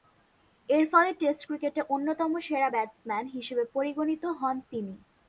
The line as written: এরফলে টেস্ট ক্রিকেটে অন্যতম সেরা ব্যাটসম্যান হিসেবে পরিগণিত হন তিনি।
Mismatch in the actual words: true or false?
false